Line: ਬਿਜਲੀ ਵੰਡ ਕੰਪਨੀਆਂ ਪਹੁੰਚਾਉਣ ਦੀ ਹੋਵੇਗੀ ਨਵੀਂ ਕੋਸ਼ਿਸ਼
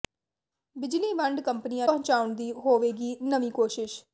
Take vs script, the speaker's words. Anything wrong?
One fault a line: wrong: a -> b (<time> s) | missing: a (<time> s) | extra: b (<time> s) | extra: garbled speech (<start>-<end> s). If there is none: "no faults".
no faults